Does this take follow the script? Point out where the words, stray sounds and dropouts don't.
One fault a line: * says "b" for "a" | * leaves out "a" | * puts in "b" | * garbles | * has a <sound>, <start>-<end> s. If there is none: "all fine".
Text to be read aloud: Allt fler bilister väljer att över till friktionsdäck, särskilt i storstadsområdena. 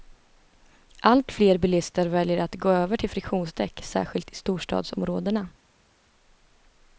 * puts in "gå"